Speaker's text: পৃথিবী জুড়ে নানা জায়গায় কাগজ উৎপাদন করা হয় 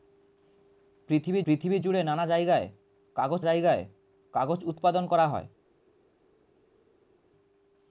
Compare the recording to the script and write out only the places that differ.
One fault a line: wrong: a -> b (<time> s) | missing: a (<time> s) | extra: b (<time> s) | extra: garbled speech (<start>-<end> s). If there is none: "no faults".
extra: পৃথিবী (1.5 s)
extra: জায়গায় কাগজ (3.4 s)